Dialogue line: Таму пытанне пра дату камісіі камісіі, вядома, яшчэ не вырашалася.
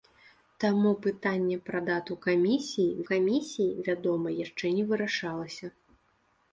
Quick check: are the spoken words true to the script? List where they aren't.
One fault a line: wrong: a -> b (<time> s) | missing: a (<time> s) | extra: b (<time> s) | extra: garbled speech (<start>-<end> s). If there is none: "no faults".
no faults